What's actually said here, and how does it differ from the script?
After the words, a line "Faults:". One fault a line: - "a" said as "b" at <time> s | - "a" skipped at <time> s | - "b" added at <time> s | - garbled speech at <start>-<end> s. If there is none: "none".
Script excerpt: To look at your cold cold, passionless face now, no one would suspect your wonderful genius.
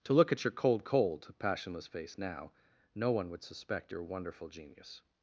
To look at your cold cold, passionless face now, no one would suspect your wonderful genius.
Faults:
none